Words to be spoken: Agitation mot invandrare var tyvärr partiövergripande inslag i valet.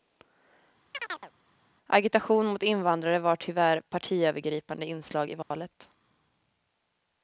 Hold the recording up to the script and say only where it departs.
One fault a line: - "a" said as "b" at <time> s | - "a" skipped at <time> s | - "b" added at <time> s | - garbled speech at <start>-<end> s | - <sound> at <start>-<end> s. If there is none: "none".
- chirp at 0.9-1.3 s
- dropout at 5.4-5.5 s